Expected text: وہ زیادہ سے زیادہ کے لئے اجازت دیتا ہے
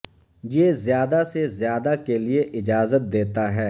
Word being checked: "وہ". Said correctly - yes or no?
no